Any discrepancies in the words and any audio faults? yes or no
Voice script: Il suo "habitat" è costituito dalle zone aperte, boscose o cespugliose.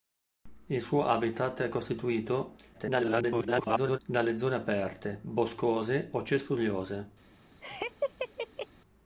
yes